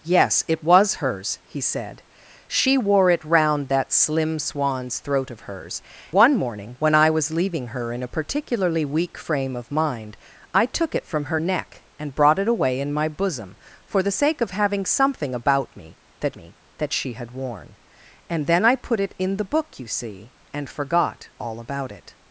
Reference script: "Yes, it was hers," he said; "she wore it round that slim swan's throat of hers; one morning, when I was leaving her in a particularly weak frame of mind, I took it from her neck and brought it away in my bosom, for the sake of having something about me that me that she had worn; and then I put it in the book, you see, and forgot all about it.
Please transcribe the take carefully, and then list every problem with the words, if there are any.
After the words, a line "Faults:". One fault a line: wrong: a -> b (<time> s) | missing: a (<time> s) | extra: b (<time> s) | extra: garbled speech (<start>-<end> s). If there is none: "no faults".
"Yes, it was hers," he said; "she wore it round that slim swan's throat of hers; one morning, when I was leaving her in a particularly weak frame of mind, I took it from her neck and brought it away in my bosom, for the sake of having something about me that me that she had worn; and then I put it in the book, you see, and forgot all about it.
Faults:
no faults